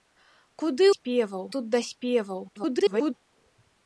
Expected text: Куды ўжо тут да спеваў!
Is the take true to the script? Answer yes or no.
no